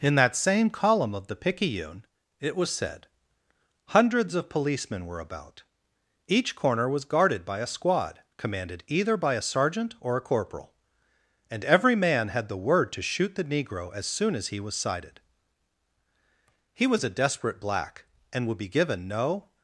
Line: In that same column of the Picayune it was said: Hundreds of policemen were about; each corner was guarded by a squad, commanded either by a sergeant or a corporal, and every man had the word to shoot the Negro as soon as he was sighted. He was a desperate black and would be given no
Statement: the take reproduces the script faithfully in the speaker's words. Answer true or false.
true